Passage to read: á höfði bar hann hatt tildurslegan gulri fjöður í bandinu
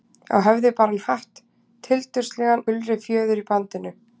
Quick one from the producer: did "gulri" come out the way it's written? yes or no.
yes